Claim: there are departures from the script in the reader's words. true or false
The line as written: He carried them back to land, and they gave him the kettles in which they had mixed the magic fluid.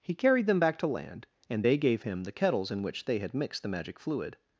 false